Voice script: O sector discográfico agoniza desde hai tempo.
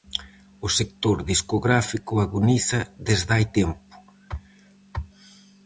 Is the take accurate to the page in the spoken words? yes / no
yes